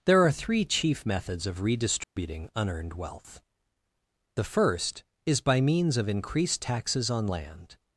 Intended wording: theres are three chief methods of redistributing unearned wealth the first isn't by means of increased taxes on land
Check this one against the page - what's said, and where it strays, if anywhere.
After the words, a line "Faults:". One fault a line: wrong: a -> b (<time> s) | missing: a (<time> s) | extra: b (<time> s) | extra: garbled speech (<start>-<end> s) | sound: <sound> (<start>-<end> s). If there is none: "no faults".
there are three chief methods of redistributing unearned wealth the first is by means of increased taxes on land
Faults:
wrong: theres -> there (0.1 s)
sound: dropout (2.0-2.2 s)
wrong: isn't -> is (5.3 s)